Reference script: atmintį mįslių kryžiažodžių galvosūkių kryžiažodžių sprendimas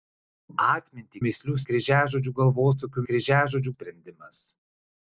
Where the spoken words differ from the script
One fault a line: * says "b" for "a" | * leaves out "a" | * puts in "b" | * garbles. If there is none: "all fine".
all fine